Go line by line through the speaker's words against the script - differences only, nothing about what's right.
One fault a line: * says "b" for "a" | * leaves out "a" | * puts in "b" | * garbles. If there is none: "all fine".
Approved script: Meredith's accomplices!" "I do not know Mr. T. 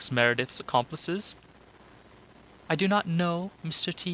all fine